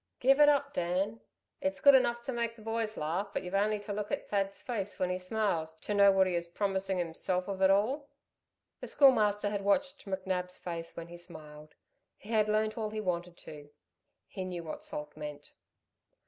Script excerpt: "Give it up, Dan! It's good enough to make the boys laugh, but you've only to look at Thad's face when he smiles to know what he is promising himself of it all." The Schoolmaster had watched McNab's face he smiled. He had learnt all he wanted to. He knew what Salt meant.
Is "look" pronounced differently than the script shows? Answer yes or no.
no